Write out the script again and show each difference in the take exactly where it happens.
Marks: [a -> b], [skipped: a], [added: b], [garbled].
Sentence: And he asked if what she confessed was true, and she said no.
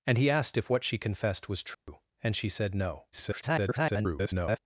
And he asked if what she confessed was true, and she said no. [garbled]